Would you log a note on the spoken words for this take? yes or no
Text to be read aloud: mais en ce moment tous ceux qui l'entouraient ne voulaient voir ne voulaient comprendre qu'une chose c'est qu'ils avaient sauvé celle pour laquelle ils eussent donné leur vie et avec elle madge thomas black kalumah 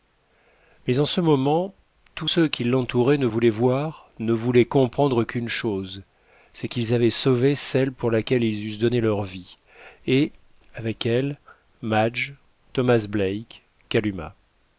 no